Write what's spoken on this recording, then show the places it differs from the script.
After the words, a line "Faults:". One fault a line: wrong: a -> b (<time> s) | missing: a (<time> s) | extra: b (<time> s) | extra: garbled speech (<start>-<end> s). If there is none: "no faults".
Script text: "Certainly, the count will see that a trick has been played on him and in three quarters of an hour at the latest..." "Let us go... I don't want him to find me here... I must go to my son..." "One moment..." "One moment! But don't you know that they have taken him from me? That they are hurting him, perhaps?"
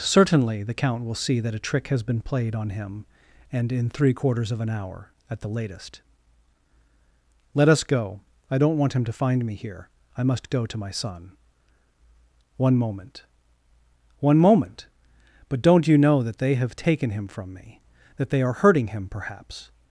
"Certainly, the count will see that a trick has been played on him and in three quarters of an hour at the latest..." "Let us go... I don't want him to find me here... I must go to my son..." "One moment..." "One moment! But don't you know that they have taken him from me? That they are hurting him, perhaps?"
Faults:
no faults